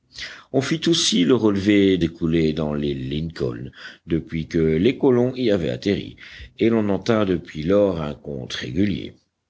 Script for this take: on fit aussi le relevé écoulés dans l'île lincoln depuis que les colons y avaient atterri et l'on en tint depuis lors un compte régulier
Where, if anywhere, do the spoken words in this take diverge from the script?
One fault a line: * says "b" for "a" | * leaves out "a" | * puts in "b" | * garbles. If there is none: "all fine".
all fine